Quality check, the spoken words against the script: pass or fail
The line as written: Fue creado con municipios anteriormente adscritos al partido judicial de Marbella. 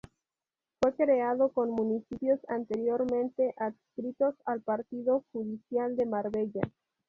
pass